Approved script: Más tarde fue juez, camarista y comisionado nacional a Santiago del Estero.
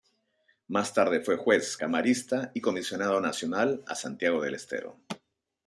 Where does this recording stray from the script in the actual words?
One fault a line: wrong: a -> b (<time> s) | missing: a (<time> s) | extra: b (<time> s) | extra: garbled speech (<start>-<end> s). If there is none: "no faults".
no faults